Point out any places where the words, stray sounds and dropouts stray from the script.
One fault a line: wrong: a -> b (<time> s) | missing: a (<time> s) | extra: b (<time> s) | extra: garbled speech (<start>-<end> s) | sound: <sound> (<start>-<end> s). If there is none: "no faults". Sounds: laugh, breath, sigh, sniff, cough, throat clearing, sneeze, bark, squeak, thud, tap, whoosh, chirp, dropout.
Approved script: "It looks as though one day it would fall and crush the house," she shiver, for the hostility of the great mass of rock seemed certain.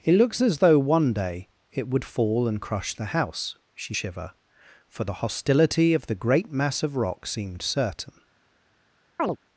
sound: chirp (9.2-9.4 s)